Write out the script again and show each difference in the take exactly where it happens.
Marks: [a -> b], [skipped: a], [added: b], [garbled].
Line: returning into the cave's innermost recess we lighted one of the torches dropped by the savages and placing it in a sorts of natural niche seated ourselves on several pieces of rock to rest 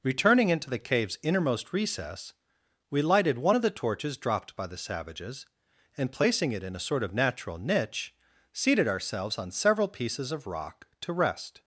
returning into the cave's innermost recess we lighted one of the torches dropped by the savages and placing it in a [sorts -> sort] of natural niche seated ourselves on several pieces of rock to rest